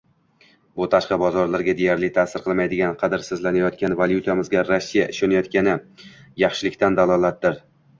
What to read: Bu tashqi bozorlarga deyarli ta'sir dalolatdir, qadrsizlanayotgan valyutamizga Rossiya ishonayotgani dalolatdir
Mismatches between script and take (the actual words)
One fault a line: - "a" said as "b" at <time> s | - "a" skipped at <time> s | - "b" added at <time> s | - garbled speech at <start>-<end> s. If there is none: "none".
- "dalolatdir" said as "qilmaydigan" at 2.4 s
- "yaxshilikdan" added at 6.5 s